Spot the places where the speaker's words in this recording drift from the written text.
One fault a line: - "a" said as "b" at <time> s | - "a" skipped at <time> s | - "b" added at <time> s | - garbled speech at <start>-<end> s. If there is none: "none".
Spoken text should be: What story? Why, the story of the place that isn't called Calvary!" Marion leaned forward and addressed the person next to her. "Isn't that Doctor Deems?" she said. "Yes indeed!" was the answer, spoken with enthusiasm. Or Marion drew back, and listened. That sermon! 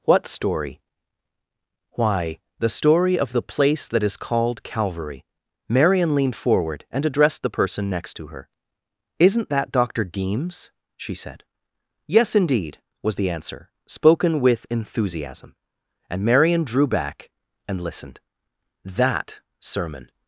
- "isn't" said as "is" at 4.0 s
- "Or" said as "And" at 16.1 s